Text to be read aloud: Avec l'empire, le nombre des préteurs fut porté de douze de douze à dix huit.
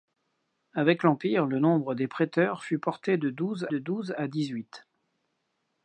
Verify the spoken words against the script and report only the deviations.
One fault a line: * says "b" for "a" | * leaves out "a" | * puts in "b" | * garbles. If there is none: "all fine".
all fine